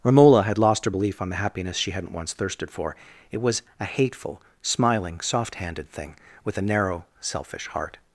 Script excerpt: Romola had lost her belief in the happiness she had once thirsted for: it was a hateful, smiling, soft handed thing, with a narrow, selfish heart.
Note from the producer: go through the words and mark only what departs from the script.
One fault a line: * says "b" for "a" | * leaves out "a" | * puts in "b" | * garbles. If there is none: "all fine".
* says "on" for "in"
* says "hadn't" for "had"